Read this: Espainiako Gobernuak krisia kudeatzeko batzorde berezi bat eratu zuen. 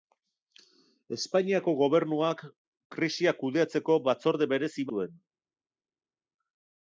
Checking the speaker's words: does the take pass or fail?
fail